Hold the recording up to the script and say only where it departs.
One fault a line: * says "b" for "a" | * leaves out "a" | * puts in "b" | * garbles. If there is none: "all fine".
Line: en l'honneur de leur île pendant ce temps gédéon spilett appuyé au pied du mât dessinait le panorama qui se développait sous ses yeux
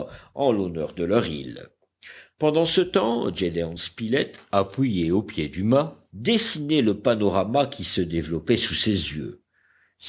all fine